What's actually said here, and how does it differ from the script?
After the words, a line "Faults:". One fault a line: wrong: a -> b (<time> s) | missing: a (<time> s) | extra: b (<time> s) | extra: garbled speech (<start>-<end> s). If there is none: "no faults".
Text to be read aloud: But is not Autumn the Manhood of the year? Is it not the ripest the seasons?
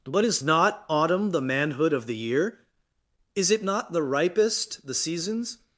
But is not Autumn the Manhood of the year? Is it not the ripest the seasons?
Faults:
no faults